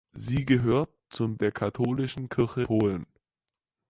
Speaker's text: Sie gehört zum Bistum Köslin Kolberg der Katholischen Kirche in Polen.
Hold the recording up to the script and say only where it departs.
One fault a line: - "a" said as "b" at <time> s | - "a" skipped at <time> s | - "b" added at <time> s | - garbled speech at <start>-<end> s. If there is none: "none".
- "Bistum Köslin Kolberg" skipped at 1.4 s
- "in" skipped at 2.6 s